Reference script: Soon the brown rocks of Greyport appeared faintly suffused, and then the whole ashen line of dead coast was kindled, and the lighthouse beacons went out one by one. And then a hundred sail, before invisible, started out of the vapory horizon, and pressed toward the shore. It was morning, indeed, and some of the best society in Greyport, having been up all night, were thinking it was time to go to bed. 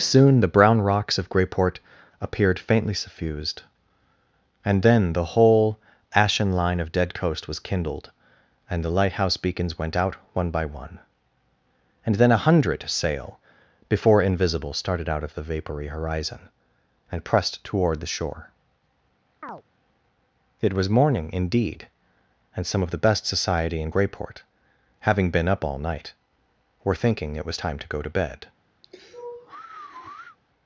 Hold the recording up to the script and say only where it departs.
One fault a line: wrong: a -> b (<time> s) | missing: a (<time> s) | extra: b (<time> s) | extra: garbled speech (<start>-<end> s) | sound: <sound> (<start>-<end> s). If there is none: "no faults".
sound: chirp (19.4-19.6 s)
sound: sigh (28.8-30.4 s)